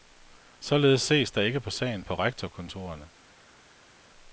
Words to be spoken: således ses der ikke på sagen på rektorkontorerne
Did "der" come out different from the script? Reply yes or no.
no